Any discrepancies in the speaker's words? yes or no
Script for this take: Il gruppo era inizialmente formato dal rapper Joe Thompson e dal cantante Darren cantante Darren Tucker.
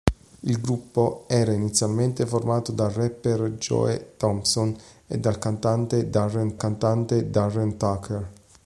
no